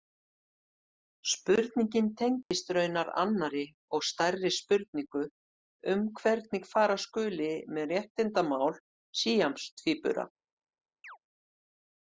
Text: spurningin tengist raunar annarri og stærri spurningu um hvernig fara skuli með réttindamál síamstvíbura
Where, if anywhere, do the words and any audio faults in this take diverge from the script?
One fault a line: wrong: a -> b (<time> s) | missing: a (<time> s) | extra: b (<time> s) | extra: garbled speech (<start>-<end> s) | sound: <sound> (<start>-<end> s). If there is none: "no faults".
sound: dropout (2.4-2.5 s)
sound: chirp (11.0-11.2 s)